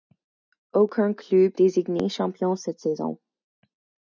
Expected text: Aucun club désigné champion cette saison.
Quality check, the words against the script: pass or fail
pass